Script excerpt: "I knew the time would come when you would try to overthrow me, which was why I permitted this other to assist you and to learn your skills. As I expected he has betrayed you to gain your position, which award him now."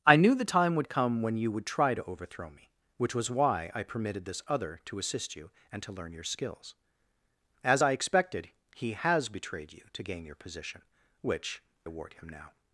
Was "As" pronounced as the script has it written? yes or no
yes